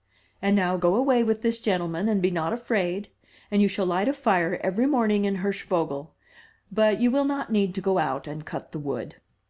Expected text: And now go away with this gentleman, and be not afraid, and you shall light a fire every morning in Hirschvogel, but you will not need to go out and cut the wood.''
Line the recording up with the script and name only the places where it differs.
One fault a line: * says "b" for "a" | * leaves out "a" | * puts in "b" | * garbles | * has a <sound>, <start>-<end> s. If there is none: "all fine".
all fine